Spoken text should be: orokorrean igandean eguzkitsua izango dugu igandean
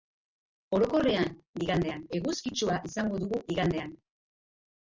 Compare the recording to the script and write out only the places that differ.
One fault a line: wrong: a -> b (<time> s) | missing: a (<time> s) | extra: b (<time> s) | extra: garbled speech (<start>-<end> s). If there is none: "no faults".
no faults